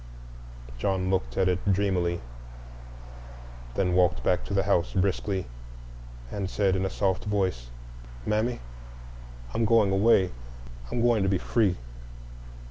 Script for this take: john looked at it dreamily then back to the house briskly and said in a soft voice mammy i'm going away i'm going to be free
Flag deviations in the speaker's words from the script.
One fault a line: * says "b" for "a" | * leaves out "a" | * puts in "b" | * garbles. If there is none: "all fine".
* puts in "walked"